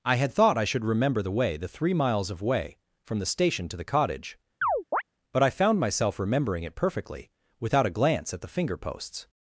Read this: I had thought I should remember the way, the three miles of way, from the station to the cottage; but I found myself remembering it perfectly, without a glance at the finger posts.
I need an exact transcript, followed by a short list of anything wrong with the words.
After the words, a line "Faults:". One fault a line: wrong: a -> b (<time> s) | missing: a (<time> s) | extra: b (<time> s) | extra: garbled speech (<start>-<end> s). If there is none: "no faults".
I had thought I should remember the way, the three miles of way, from the station to the cottage; but I found myself remembering it perfectly, without a glance at the finger posts.
Faults:
no faults